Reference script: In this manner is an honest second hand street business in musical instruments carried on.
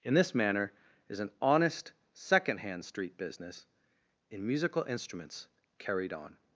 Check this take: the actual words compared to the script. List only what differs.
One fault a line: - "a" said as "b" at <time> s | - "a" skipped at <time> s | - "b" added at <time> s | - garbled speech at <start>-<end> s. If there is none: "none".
none